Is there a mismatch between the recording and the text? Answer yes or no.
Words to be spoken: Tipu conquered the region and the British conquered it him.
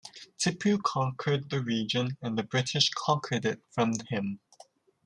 yes